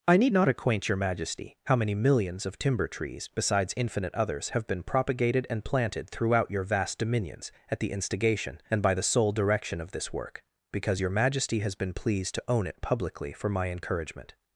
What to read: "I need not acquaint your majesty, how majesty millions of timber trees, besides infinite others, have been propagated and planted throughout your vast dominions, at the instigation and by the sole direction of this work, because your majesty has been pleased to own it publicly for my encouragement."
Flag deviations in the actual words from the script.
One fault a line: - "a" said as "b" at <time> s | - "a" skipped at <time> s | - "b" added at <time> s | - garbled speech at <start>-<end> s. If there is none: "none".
- "majesty" said as "many" at 1.7 s